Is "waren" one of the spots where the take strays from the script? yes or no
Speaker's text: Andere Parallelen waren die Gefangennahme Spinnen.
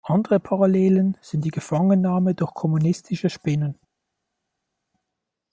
yes